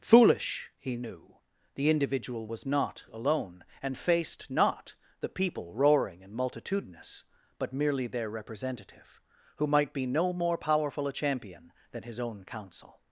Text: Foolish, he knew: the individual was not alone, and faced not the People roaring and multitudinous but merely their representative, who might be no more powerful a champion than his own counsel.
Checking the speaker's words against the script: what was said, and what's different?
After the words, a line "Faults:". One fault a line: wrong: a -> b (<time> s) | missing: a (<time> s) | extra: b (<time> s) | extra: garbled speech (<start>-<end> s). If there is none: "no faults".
Foolish, he knew: the individual was not alone, and faced not the People roaring and multitudinous but merely their representative, who might be no more powerful a champion than his own counsel.
Faults:
no faults